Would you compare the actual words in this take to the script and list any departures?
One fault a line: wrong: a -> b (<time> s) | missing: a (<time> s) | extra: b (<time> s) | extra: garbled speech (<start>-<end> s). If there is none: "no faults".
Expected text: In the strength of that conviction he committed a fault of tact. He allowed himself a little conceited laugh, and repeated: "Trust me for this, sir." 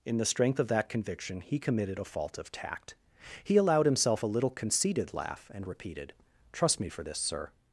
no faults